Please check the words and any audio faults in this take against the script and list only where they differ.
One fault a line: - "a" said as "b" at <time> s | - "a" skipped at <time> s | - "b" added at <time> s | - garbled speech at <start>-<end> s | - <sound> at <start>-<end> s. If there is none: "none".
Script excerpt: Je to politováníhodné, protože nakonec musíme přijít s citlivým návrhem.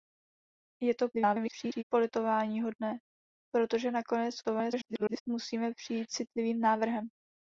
- garbled speech at 1.1-1.8 s
- garbled speech at 4.4-5.2 s
- "s" skipped at 6.1 s